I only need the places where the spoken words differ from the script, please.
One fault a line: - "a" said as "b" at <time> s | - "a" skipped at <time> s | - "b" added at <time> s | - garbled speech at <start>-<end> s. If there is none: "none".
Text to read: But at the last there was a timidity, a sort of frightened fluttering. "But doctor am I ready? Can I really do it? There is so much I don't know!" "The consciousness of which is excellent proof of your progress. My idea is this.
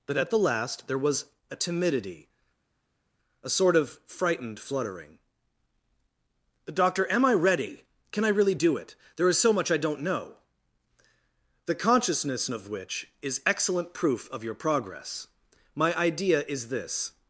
- "But" skipped at 5.2 s